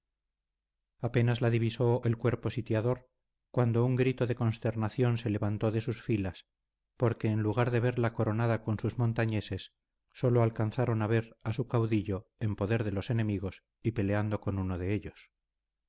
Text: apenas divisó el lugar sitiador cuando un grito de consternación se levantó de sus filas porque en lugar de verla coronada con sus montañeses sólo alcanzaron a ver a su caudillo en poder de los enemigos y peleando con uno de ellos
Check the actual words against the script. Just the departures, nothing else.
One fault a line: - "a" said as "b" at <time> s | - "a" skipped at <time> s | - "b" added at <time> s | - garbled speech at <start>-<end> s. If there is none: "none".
- "la" added at 1.4 s
- "lugar" said as "cuerpo" at 2.2 s